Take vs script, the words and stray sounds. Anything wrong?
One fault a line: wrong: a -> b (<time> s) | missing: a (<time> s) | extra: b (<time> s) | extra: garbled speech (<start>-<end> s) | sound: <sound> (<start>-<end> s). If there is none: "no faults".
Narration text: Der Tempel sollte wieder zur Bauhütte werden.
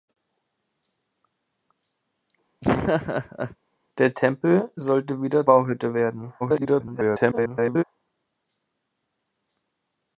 sound: laugh (2.6-3.6 s)
missing: zur (5.5 s)
extra: garbled speech (6.4-7.8 s)